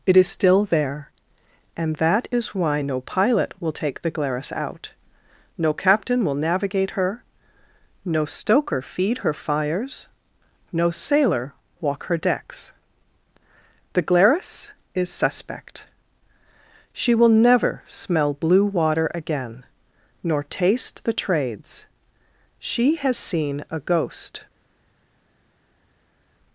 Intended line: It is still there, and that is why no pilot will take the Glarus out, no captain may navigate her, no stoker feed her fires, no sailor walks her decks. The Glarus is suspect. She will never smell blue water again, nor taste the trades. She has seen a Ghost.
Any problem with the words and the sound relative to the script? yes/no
yes